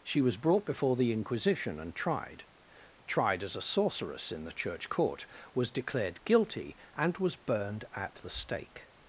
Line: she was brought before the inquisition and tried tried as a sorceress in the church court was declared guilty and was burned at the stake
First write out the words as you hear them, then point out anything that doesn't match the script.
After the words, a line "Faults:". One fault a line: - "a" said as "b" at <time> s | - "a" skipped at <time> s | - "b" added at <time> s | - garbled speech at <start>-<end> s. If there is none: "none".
she was brought before the inquisition and tried tried as a sorceress in the church court was declared guilty and was burned at the stake
Faults:
none